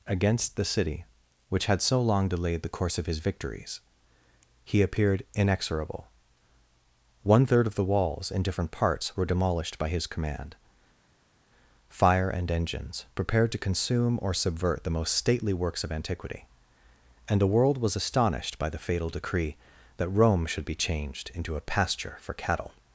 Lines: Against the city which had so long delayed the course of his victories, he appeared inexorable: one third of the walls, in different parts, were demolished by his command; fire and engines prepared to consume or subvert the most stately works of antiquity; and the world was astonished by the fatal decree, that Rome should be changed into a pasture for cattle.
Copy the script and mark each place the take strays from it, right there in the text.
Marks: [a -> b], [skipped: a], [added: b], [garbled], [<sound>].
Against the city which had so long delayed the course of his victories, he appeared inexorable: one third of the walls, in different parts, were demolished by his command; fire and engines prepared to consume or subvert the most stately works of antiquity; and the world was astonished by the fatal decree, that Rome should be changed into a pasture for cattle.